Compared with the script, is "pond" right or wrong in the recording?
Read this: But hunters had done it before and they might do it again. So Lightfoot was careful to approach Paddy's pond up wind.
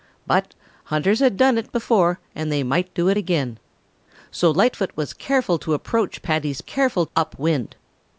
wrong